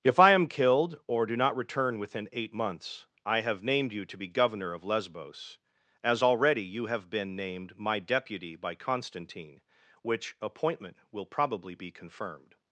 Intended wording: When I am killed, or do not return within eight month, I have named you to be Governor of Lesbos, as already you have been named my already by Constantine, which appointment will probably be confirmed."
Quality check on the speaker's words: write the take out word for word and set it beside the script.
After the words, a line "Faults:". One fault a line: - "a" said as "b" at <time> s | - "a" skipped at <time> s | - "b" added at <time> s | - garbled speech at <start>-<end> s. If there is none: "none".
If I am killed, or do not return within eight months, I have named you to be Governor of Lesbos, as already you have been named my deputy by Constantine, which appointment will probably be confirmed."
Faults:
- "When" said as "If" at 0.0 s
- "month" said as "months" at 2.5 s
- "already" said as "deputy" at 8.0 s